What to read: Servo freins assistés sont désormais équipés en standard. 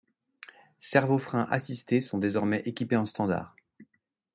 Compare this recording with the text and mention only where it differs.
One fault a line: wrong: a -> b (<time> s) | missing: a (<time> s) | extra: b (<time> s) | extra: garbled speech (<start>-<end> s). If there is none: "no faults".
no faults